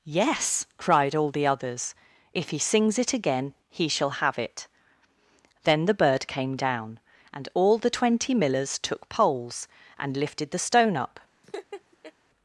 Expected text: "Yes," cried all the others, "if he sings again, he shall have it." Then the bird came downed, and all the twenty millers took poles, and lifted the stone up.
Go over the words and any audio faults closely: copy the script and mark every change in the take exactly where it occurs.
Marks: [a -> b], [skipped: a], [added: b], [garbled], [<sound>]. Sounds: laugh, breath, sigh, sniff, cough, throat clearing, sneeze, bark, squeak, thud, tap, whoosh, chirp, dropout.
"Yes," cried all the others, "if he sings [added: it] again, he shall have it." Then the bird came [downed, -> down] and all the twenty millers took poles, and lifted the stone up. [laugh]